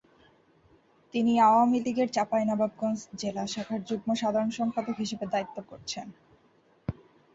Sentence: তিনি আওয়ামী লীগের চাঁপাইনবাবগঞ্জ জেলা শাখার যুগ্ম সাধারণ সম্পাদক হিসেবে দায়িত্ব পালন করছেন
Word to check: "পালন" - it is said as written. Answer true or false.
false